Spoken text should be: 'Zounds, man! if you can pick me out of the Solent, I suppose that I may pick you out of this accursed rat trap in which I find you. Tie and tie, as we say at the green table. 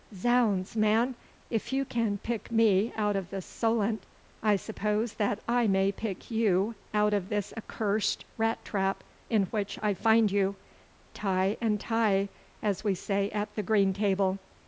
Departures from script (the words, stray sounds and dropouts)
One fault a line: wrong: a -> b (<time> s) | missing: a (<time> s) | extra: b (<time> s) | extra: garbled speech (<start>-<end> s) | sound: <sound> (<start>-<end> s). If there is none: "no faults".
no faults